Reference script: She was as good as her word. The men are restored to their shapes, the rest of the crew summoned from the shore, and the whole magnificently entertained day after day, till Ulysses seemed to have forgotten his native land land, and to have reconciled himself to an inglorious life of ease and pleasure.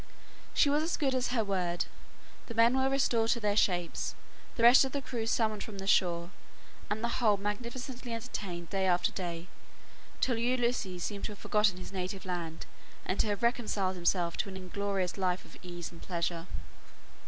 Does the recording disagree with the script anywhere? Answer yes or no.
yes